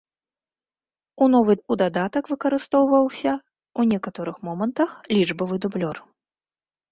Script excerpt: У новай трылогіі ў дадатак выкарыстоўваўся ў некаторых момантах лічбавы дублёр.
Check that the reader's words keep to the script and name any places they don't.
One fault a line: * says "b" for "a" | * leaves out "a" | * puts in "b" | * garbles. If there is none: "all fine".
* leaves out "трылогіі"